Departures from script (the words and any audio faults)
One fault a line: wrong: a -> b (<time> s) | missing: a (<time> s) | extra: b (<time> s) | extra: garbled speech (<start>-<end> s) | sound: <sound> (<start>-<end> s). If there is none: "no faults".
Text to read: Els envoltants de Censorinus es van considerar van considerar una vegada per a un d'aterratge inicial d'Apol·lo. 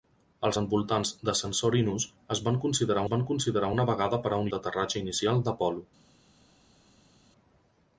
no faults